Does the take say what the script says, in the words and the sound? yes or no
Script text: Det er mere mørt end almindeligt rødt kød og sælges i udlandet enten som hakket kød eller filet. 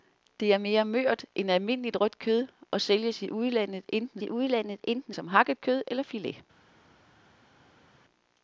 no